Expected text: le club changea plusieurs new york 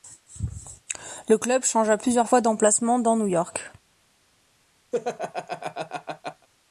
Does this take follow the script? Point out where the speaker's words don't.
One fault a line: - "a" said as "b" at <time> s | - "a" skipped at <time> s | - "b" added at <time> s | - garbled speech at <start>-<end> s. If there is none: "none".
- "fois d'emplacement dans" added at 2.3 s